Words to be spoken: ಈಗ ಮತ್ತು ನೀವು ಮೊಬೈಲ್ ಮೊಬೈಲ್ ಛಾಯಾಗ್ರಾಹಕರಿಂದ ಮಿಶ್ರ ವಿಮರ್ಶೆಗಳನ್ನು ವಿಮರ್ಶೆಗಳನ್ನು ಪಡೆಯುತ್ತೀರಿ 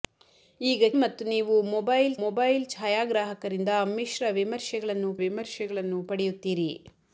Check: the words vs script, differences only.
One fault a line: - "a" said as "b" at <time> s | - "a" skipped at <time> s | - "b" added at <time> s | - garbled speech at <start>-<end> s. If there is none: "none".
none